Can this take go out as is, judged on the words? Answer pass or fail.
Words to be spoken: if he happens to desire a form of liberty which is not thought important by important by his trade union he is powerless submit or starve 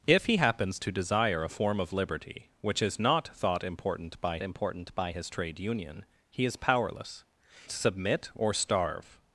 pass